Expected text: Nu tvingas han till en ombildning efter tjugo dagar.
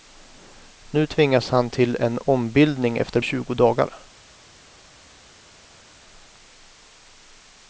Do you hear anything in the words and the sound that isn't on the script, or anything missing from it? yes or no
no